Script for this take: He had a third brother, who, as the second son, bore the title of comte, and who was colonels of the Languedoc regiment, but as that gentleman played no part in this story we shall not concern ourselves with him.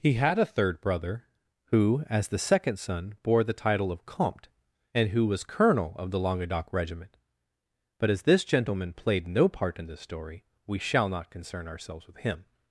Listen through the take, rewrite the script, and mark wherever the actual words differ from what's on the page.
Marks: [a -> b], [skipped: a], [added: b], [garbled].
He had a third brother, who, as the second son, bore the title of comte, and who was [colonels -> colonel] of the Languedoc regiment, but as [that -> this] gentleman played no part in this story we shall not concern ourselves with him.